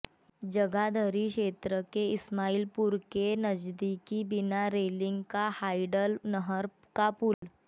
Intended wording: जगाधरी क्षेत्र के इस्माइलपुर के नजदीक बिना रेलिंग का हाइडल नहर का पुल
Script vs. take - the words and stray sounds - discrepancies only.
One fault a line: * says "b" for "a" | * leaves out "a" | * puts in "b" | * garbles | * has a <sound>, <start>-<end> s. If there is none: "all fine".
* has a dropout, 7.3-7.4 s